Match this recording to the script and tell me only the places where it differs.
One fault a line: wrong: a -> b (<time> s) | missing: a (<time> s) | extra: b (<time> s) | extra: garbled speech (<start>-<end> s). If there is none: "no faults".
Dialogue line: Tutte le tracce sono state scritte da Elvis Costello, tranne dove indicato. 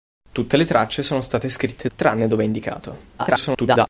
missing: da Elvis Costello (1.9 s)
extra: garbled speech (3.2-3.9 s)